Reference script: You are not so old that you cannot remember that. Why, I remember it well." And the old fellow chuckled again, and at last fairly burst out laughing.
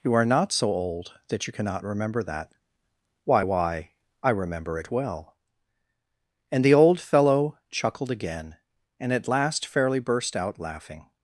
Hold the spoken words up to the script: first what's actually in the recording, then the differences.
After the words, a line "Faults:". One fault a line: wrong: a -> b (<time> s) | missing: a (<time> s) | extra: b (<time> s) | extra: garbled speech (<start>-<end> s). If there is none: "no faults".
You are not so old that you cannot remember that. Why Why, I remember it well." And the old fellow chuckled again, and at last fairly burst out laughing.
Faults:
extra: Why (3.4 s)